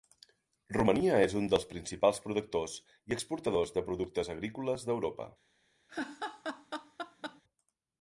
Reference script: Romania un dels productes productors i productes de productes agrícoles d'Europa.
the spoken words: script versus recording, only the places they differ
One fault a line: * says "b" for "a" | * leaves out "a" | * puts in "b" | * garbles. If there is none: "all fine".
* puts in "és"
* says "principals" for "productes"
* says "exportadors" for "productes"